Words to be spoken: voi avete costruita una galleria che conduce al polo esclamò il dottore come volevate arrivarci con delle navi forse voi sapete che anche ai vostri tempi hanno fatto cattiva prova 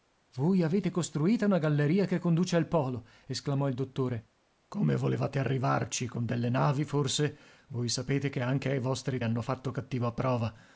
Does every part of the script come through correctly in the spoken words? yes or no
no